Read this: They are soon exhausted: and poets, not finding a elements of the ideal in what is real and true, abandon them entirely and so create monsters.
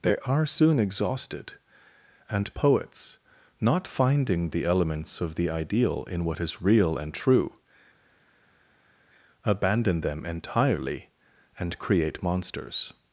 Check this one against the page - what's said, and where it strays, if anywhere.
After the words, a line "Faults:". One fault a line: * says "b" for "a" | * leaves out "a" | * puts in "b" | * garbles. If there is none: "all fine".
They are soon exhausted: and poets, not finding the elements of the ideal in what is real and true, abandon them entirely and create monsters.
Faults:
* says "the" for "a"
* leaves out "so"